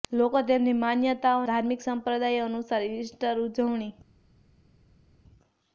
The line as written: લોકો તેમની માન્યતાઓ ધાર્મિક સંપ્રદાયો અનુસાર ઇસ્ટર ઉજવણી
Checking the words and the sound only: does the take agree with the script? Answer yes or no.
yes